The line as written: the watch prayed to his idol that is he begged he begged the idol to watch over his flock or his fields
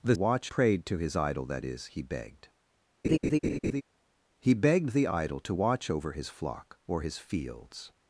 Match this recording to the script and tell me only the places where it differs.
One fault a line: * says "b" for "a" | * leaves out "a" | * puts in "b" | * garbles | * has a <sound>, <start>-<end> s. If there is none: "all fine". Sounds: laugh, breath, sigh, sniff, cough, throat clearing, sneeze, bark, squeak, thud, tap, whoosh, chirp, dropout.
* has a laugh, 3.0-3.8 s